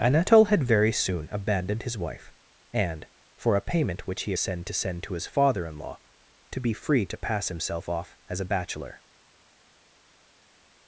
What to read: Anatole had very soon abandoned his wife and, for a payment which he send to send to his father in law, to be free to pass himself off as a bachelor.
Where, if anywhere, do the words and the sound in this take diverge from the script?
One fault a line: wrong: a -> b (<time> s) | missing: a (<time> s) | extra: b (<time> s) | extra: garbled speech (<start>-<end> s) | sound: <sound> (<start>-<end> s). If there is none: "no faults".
no faults